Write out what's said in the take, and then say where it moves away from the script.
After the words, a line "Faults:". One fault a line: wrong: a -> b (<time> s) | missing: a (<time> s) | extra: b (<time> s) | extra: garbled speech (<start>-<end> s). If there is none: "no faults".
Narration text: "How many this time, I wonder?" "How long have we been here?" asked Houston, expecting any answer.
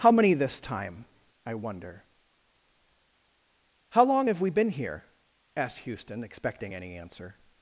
"How many this time, I wonder?" "How long have we been here?" asked Houston, expecting any answer.
Faults:
no faults